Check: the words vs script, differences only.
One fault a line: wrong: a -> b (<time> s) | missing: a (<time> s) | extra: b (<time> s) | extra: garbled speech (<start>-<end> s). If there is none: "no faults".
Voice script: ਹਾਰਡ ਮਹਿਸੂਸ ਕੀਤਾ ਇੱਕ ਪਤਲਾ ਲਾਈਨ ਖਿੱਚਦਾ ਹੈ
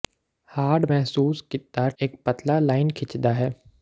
no faults